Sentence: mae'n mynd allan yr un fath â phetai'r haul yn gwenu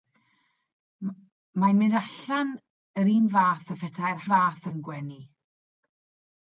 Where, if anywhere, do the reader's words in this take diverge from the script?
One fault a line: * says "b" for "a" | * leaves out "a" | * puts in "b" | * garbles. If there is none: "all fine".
* says "fath" for "haul"